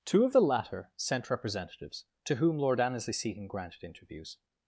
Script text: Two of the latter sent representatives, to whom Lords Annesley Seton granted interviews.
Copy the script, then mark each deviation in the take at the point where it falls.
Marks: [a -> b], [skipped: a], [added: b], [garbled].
Two of the latter sent representatives, to whom [Lords -> Lord] Annesley Seton granted interviews.